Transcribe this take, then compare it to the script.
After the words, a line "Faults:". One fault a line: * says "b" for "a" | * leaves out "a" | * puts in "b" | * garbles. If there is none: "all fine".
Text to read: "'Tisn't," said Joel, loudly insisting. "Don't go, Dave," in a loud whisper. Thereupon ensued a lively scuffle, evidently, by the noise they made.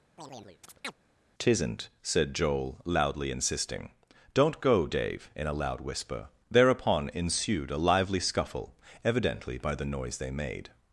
"'Tisn't," said Joel, loudly insisting. "Don't go, Dave," in a loud whisper. Thereupon ensued a lively scuffle, evidently, by the noise they made.
Faults:
all fine